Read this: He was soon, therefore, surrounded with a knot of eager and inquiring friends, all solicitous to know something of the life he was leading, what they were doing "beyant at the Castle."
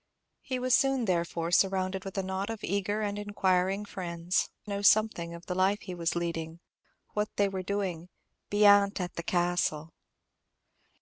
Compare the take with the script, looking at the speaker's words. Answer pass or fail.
fail